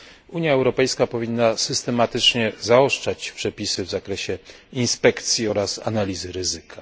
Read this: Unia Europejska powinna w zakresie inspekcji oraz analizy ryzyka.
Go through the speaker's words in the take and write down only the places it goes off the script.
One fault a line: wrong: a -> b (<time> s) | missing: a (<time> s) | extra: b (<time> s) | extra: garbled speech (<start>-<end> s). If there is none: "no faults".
extra: systematycznie zaostrzać przepisy (1.6 s)